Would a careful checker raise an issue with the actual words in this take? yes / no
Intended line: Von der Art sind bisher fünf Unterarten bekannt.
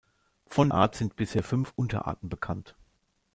yes